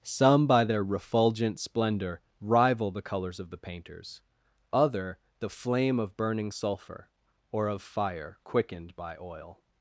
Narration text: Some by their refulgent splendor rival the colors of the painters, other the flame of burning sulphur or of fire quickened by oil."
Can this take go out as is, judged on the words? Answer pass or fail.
pass